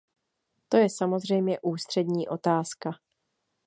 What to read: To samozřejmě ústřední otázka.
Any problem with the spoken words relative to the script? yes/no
yes